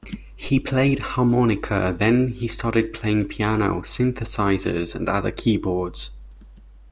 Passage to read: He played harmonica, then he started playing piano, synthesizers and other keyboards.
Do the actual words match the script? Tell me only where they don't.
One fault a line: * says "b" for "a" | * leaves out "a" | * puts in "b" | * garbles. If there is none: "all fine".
all fine